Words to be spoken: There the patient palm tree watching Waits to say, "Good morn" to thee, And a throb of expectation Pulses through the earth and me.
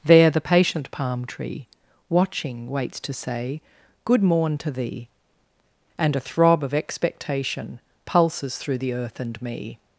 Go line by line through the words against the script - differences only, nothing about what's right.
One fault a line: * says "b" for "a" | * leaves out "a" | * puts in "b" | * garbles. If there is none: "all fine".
all fine